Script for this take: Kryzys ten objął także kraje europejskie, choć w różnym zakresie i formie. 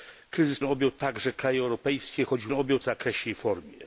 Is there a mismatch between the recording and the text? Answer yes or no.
yes